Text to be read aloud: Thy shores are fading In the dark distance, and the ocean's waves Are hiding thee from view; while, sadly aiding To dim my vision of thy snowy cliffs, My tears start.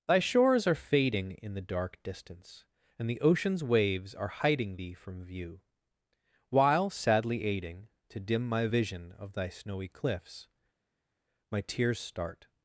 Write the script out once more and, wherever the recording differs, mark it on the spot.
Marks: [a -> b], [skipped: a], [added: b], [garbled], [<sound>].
Thy shores are fading In the dark distance, and the ocean's waves Are hiding thee from view; while, sadly aiding To dim my vision of thy snowy cliffs, My tears start.